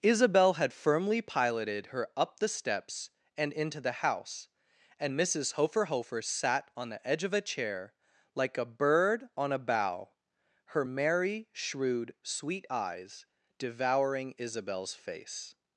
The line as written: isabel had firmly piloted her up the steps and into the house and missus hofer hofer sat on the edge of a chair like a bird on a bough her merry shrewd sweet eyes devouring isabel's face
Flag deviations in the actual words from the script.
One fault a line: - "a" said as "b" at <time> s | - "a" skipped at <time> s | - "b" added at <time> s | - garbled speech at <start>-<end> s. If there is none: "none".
none